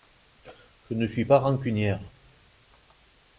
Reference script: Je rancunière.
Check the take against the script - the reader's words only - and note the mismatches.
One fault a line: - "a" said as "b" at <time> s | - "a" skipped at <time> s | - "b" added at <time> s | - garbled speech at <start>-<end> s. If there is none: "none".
- "ne suis pas" added at 0.9 s